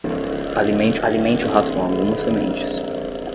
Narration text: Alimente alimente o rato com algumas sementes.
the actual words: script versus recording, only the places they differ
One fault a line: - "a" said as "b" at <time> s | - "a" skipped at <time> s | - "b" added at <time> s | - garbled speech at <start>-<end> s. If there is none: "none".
none